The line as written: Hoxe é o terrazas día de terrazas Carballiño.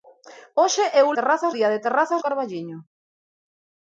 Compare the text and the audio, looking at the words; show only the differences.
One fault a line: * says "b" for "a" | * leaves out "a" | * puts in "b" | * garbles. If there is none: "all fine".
all fine